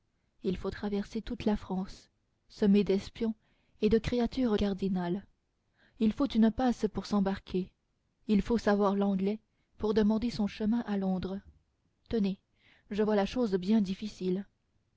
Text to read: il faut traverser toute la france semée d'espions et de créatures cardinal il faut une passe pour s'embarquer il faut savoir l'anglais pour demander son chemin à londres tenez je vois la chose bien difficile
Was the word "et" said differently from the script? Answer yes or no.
no